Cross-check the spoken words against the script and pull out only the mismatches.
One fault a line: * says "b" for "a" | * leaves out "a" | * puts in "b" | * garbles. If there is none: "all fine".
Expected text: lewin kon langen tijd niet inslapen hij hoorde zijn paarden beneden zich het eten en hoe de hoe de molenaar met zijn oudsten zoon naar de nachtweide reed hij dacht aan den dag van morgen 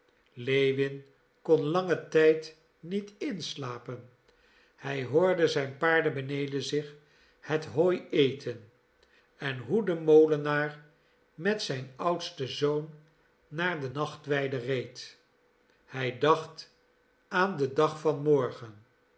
* puts in "hooi"
* leaves out "hoe de"